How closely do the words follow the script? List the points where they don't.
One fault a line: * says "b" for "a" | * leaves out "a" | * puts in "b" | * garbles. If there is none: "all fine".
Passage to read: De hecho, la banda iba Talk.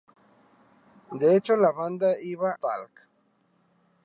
all fine